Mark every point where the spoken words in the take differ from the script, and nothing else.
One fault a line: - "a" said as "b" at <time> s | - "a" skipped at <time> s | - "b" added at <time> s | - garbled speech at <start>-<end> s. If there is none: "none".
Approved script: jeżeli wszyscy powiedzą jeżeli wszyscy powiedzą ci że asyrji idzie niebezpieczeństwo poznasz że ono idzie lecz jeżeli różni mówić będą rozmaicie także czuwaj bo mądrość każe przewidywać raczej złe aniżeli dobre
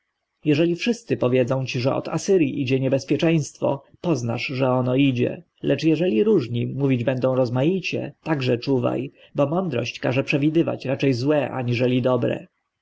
- "jeżeli wszyscy powiedzą" skipped at 1.6 s
- "od" added at 1.9 s